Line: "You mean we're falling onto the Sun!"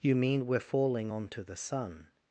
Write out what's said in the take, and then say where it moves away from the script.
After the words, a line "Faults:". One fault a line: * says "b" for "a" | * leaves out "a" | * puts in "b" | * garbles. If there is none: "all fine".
"You mean we're falling onto the Sun!"
Faults:
all fine